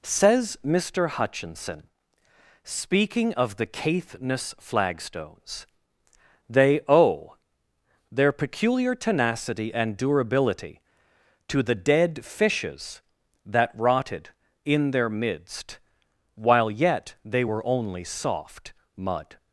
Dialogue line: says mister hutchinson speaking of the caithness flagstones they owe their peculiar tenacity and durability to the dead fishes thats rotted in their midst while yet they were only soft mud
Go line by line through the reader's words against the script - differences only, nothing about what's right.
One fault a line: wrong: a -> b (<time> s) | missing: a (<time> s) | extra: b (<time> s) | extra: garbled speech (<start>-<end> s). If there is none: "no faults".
wrong: thats -> that (13.4 s)